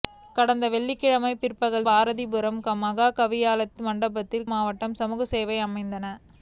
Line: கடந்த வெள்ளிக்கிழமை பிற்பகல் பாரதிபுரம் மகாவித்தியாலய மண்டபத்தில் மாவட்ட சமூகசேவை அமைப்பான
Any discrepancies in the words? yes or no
no